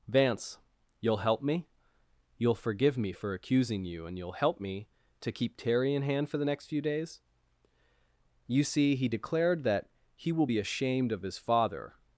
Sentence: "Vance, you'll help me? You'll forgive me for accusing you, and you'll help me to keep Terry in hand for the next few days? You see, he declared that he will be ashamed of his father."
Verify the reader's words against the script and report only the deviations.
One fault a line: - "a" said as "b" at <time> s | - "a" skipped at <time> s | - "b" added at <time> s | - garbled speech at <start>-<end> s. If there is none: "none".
none